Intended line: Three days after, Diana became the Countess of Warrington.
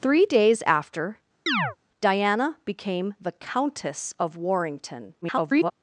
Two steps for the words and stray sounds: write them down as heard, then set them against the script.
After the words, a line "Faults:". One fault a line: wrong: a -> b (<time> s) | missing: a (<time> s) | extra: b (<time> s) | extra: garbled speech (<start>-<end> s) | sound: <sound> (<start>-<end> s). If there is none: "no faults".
Three days after, Diana became the Countess of Warrington. [garbled]
Faults:
sound: chirp (1.5-1.8 s)
extra: garbled speech (5.2-5.7 s)